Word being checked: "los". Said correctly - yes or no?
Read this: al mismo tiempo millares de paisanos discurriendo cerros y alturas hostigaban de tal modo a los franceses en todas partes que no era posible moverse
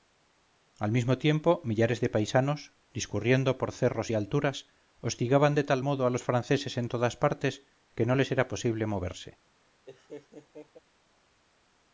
yes